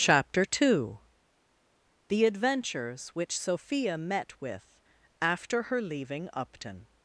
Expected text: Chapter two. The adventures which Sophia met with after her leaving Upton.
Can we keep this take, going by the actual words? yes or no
yes